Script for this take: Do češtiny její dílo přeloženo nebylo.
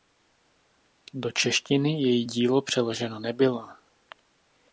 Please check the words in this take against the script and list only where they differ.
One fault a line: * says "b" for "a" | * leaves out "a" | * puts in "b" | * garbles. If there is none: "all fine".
all fine